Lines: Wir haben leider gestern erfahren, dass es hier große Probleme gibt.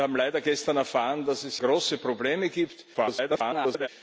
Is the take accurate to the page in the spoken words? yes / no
no